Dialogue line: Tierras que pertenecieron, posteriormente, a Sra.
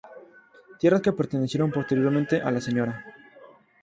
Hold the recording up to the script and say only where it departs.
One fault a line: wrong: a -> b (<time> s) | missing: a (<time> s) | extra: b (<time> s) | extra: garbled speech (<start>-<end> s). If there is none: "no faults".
extra: la (2.5 s)